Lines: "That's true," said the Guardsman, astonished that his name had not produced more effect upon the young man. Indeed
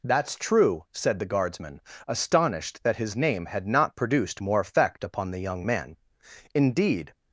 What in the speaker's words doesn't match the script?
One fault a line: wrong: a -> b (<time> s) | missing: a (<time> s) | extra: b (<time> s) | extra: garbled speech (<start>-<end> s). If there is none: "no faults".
no faults